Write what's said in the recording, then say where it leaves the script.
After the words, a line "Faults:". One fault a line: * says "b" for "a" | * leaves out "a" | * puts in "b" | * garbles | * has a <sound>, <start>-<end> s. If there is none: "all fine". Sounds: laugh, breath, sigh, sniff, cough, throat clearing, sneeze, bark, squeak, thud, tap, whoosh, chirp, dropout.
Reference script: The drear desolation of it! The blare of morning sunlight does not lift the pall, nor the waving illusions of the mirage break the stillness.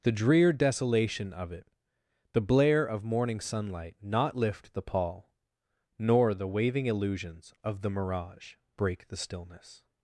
The drear desolation of it! The blare of morning sunlight not lift the pall, nor the waving illusions of the mirage break the stillness.
Faults:
* leaves out "does"